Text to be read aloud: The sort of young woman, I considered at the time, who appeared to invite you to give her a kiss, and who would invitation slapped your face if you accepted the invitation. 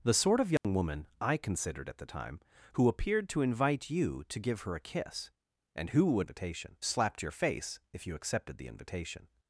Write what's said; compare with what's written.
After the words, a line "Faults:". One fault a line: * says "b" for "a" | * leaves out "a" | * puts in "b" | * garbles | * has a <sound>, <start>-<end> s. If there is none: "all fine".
The sort of young woman, I considered at the time, who appeared to invite you to give her a kiss, and who would invitation slapped your face if you accepted the invitation.
Faults:
* has a dropout, 0.6-0.6 s